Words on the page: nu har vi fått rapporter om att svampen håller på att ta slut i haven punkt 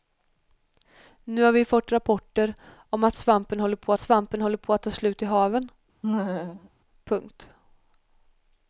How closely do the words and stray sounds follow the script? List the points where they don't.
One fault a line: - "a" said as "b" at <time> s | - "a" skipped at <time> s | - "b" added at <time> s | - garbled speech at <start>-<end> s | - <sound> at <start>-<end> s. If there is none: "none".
- "svampen håller på" added at 4.0 s
- laugh at 6.0-6.7 s